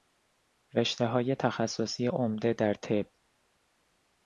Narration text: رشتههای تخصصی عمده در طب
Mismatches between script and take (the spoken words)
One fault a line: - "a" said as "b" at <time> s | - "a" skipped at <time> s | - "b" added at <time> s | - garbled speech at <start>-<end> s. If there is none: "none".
none